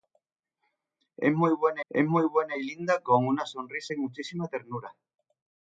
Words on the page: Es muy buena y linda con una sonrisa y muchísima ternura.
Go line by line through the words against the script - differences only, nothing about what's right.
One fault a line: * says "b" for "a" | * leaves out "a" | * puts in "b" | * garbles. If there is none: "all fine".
* puts in "es muy buena"